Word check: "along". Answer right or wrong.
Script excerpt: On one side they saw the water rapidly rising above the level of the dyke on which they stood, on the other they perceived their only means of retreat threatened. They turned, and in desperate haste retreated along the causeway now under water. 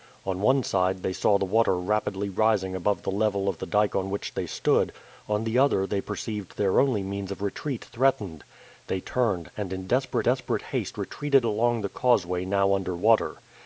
right